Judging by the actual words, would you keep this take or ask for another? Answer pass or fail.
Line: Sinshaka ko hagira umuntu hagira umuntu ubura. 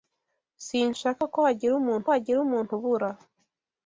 pass